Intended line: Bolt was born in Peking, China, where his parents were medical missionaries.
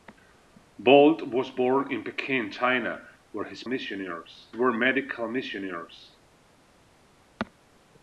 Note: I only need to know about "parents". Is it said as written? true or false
false